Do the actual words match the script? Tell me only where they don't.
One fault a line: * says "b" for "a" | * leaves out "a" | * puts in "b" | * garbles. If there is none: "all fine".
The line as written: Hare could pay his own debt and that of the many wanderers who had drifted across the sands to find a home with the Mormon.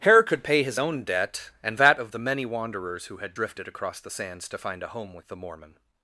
all fine